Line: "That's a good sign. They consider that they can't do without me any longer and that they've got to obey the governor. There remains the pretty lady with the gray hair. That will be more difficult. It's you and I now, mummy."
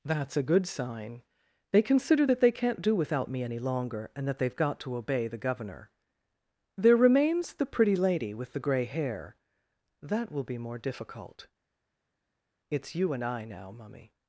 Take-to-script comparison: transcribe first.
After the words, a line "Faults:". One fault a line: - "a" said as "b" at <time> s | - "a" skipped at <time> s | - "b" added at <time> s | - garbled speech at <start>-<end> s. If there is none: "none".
"That's a good sign. They consider that they can't do without me any longer and that they've got to obey the governor. There remains the pretty lady with the gray hair. That will be more difficult. It's you and I now, mummy."
Faults:
none